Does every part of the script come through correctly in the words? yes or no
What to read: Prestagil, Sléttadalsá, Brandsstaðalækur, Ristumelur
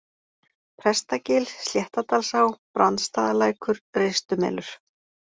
yes